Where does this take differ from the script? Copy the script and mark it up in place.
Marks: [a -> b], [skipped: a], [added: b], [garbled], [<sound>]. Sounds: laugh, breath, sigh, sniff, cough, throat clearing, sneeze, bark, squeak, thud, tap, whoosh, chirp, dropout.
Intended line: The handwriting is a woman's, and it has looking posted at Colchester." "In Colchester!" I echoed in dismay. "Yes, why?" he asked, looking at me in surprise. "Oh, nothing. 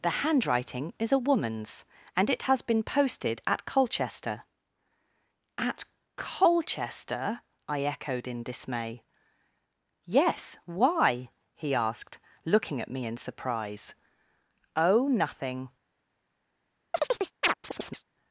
The handwriting is a woman's, and it has [looking -> been] posted at Colchester." ["In -> At] Colchester!" I echoed in dismay. "Yes, why?" he asked, looking at me in surprise. "Oh, nothing. [chirp]